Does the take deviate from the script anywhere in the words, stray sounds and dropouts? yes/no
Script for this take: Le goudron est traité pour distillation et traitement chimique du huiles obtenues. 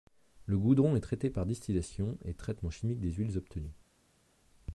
yes